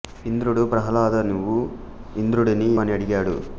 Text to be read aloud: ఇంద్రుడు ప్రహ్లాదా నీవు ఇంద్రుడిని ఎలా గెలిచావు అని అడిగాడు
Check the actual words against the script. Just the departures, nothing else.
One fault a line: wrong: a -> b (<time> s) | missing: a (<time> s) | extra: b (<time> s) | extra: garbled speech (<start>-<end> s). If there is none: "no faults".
missing: ఎలా గెలిచావు (2.7 s)